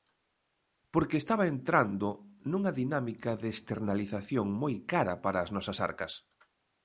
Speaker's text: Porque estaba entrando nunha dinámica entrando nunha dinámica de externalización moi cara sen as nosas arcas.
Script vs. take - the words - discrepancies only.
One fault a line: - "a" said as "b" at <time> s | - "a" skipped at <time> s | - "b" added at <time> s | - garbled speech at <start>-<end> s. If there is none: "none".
- "entrando nunha dinámica" skipped at 3.3 s
- "sen" said as "para" at 5.2 s